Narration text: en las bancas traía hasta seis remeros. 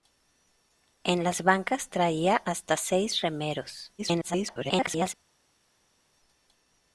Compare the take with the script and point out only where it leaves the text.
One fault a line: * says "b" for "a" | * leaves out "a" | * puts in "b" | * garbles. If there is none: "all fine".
* garbles